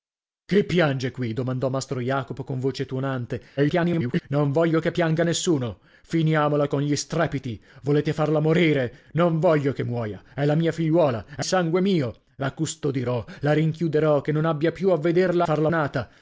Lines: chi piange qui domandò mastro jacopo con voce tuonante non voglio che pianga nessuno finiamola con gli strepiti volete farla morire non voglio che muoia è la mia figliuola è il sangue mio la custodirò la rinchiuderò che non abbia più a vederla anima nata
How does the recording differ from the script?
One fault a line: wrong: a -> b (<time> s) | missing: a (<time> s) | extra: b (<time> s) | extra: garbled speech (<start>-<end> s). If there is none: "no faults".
extra: garbled speech (3.6-4.2 s)
missing: il (11.4 s)
wrong: anima -> farla (15.4 s)